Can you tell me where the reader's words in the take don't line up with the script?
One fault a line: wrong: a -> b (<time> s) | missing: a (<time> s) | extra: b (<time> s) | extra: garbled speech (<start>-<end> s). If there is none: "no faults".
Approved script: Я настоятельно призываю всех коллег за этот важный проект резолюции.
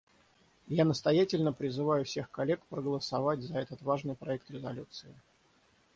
extra: проголосовать (2.7 s)